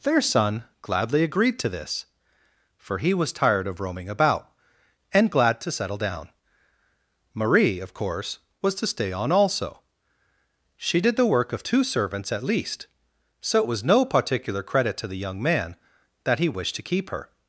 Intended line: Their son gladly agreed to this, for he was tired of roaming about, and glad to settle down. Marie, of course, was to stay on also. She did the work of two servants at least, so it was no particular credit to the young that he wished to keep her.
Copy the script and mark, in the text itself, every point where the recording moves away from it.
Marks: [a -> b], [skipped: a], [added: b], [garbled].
Their son gladly agreed to this, for he was tired of roaming about, and glad to settle down. Marie, of course, was to stay on also. She did the work of two servants at least, so it was no particular credit to the young [added: man] that he wished to keep her.